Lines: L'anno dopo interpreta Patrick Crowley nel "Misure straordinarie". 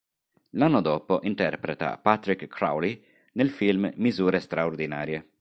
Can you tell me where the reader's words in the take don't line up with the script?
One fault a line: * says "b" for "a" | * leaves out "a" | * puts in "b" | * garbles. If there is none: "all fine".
* puts in "film"